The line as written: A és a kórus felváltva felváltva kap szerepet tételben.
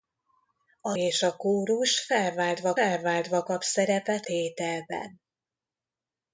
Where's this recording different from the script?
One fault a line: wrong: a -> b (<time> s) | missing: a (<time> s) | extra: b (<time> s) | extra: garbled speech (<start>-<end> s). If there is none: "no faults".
no faults